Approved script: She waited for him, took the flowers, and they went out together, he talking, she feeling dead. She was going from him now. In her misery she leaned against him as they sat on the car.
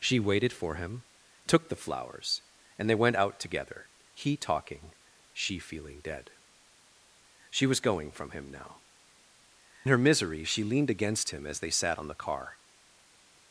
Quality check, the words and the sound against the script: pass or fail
fail